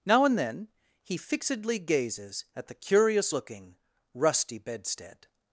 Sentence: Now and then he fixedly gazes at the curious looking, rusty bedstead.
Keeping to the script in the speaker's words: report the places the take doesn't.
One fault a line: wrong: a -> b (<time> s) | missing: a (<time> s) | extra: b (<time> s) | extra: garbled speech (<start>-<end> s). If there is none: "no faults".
no faults